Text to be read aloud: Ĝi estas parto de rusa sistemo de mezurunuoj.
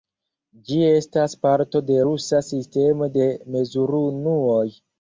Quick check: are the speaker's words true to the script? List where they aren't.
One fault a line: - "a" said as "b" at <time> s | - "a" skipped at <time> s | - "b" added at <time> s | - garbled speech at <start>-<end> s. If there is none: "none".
none